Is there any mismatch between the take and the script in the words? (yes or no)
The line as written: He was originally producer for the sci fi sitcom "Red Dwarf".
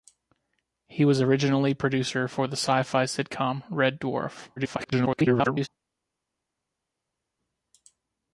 yes